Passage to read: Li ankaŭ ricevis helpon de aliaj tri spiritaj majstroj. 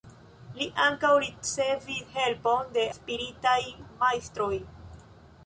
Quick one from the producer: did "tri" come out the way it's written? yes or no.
no